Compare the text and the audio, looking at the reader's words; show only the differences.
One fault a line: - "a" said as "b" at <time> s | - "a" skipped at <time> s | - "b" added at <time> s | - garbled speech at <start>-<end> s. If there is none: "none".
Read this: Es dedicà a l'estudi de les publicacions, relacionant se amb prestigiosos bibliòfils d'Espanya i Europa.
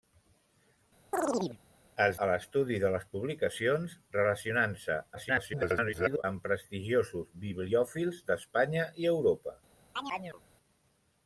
- "dedicà" skipped at 2.2 s
- garbled speech at 5.1-6.2 s